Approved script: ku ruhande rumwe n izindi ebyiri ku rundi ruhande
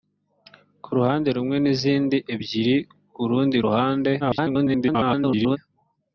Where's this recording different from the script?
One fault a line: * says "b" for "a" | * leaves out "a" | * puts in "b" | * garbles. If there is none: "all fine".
* garbles